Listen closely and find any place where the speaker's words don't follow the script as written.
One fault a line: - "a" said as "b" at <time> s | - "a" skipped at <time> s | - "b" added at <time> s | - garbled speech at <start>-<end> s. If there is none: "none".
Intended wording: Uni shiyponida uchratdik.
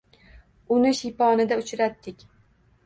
none